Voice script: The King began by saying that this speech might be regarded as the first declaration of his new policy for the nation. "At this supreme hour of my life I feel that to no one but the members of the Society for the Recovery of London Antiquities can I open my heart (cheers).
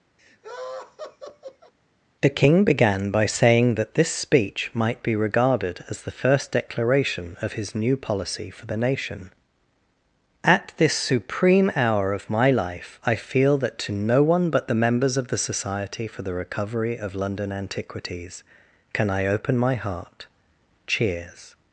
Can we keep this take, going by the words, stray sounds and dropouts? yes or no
no